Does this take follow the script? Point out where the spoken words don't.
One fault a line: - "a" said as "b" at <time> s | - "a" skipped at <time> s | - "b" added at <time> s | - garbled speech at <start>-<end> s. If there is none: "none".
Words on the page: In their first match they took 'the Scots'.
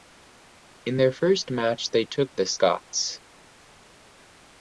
none